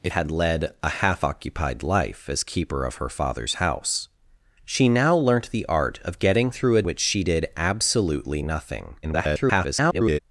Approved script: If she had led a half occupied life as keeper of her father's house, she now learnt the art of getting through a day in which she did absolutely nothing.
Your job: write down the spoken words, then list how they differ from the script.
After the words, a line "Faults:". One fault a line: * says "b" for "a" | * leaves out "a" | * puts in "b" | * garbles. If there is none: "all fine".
If had led a half occupied life as keeper of her father's house, she now learnt the art of getting through a which she did absolutely nothing. [garbled]
Faults:
* leaves out "she"
* leaves out "day in"
* garbles